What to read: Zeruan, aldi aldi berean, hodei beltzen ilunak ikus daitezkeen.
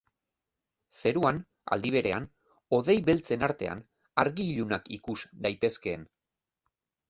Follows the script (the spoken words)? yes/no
no